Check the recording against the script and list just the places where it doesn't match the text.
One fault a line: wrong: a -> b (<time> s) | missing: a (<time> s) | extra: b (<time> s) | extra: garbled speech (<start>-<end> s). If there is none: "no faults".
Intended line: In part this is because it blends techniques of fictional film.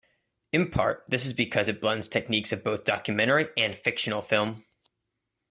extra: both documentary and (2.6 s)